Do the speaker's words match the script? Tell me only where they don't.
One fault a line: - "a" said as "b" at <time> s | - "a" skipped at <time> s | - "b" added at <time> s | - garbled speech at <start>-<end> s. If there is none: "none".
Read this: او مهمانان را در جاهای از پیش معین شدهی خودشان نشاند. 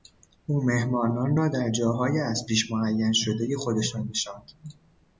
none